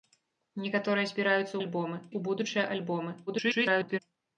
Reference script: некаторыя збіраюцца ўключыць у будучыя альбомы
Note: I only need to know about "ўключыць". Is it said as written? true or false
false